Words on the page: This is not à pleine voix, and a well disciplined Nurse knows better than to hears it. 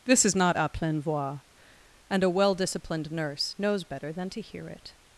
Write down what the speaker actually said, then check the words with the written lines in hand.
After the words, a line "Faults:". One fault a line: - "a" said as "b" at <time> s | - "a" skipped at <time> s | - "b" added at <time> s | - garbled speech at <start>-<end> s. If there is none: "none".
This is not à pleine voix, and a well disciplined Nurse knows better than to hear it.
Faults:
- "hears" said as "hear" at 4.4 s